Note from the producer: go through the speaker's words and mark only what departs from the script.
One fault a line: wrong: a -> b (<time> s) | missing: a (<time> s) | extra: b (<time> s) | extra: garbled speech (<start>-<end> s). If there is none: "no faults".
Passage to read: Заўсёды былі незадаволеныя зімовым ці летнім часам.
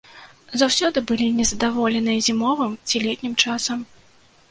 no faults